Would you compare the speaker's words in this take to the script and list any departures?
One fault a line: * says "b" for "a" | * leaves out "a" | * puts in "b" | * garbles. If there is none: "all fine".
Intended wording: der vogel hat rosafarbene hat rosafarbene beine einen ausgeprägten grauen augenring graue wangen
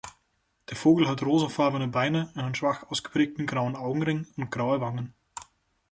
* leaves out "hat rosafarbene"
* puts in "schwach"
* puts in "und"